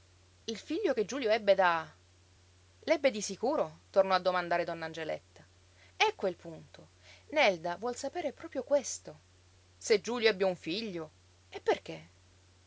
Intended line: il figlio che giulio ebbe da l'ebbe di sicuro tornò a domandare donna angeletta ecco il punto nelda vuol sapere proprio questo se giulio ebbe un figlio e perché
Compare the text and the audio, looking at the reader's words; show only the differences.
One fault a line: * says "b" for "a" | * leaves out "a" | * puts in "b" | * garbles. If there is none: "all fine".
all fine